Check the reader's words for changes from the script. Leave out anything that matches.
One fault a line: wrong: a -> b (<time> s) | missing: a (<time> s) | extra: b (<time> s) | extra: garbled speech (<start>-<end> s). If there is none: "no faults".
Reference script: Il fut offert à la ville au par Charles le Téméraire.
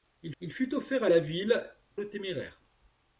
extra: il (0.4 s)
missing: au par Charles (1.7 s)